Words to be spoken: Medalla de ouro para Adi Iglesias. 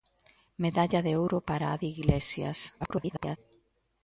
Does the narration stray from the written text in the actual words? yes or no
yes